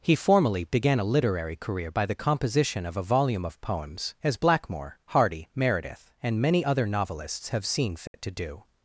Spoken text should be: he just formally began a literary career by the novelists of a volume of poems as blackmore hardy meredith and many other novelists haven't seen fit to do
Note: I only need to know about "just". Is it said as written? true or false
false